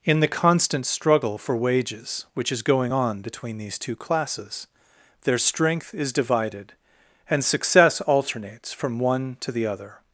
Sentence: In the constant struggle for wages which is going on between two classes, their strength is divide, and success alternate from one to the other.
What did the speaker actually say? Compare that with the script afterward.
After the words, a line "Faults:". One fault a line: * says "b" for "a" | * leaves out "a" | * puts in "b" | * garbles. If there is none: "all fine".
In the constant struggle for wages which is going on between these two classes, their strength is divided, and success alternates from one to the other.
Faults:
* puts in "these"
* says "divided" for "divide"
* says "alternates" for "alternate"